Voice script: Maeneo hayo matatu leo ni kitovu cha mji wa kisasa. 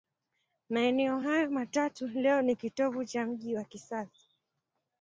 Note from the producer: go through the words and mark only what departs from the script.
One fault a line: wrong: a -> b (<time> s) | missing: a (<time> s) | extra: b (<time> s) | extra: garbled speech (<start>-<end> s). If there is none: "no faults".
no faults